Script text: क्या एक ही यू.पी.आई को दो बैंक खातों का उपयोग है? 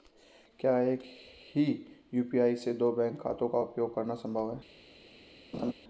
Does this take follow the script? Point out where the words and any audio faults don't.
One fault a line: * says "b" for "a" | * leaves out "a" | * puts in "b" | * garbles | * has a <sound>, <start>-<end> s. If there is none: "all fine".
* says "से" for "को"
* puts in "करना संभव"
* has a laugh, 5.5-5.7 s